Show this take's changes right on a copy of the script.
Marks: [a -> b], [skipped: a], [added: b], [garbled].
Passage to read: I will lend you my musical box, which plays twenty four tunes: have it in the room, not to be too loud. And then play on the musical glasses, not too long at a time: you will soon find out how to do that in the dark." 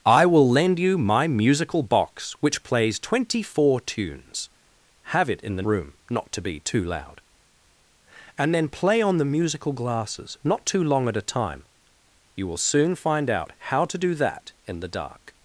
I will lend you my musical box, which plays twenty four tunes: have it in the room, not to be too loud. And then play on the musical glasses, not too long at a time: you will soon find out how to do that in the dark."